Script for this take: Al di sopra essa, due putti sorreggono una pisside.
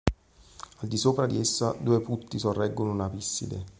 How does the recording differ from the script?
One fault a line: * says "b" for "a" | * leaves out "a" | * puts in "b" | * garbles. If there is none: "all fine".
* puts in "di"